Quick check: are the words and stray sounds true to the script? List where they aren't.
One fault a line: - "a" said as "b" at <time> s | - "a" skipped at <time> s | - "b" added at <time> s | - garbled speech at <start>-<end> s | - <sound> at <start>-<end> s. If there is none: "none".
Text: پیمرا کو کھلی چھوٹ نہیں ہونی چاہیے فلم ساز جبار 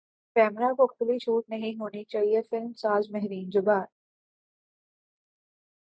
- "مہرین" added at 3.1 s